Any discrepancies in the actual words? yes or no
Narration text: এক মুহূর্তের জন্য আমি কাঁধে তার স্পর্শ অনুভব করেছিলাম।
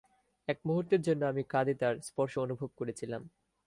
no